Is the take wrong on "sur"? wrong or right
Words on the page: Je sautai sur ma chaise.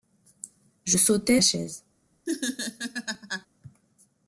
wrong